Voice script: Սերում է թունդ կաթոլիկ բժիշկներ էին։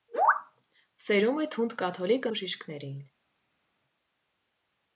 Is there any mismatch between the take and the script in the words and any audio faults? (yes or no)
no